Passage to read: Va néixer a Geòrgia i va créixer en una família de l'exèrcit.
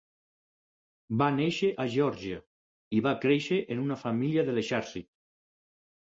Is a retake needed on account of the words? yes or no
no